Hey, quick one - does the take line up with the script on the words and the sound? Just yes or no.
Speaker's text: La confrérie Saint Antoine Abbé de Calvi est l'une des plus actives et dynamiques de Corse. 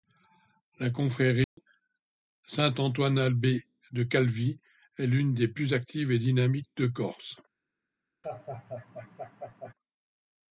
no